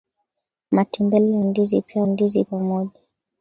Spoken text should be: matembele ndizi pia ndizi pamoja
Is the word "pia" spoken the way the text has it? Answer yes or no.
yes